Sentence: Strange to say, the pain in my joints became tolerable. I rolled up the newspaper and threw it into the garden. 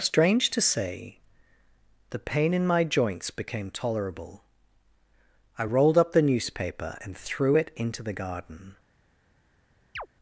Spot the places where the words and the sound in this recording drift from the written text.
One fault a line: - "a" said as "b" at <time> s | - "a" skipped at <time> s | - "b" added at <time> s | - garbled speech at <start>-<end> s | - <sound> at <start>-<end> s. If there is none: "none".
- chirp at 10.0-10.1 s